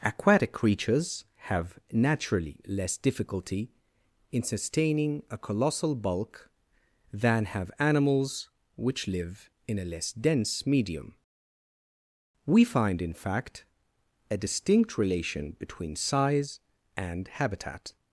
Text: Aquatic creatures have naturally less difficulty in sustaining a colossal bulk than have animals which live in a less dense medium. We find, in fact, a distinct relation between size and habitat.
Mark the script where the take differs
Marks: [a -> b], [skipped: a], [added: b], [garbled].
Aquatic creatures have naturally less difficulty in sustaining a colossal bulk than have animals which live in a less dense medium. We find, in fact, a distinct relation between size and habitat.